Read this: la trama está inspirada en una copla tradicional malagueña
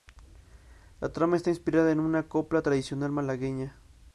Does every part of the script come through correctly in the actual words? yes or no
yes